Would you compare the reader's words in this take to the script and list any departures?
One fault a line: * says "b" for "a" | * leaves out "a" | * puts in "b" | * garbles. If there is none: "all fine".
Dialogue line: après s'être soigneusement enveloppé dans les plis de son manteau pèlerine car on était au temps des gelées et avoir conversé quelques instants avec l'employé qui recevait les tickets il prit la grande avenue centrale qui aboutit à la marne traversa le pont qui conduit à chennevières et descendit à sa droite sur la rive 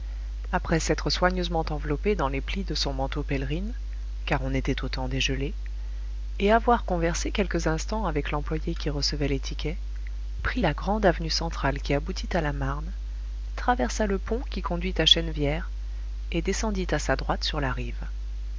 * leaves out "il"